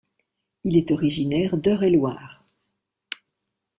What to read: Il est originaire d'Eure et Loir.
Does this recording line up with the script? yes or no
yes